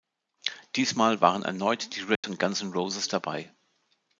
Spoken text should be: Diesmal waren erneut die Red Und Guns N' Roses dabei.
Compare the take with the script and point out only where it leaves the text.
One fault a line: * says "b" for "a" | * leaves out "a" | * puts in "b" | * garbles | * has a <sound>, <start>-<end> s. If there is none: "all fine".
* has a dropout, 2.1-2.2 s